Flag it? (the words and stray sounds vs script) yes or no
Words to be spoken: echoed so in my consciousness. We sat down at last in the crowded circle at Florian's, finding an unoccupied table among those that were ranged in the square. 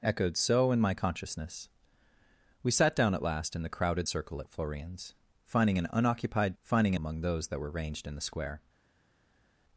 yes